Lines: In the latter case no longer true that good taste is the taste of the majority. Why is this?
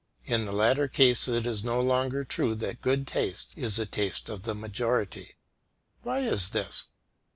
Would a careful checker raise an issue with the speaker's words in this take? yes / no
yes